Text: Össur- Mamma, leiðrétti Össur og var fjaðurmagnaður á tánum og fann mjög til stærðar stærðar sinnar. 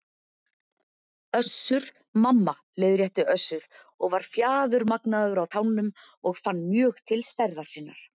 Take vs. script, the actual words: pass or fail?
fail